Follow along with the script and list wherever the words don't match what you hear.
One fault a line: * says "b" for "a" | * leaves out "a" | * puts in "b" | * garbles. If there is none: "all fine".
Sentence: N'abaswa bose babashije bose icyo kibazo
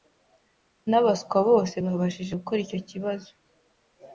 * says "gukora" for "bose"